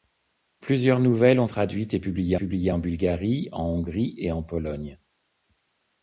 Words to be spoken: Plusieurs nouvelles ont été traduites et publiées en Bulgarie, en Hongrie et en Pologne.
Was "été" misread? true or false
true